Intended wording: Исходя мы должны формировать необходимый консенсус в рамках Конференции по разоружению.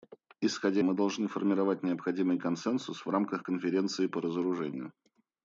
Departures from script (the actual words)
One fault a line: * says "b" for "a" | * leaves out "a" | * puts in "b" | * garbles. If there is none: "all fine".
all fine